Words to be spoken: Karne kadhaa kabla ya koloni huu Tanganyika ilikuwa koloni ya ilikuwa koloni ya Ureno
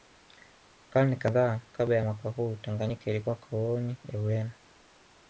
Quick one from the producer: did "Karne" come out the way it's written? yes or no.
yes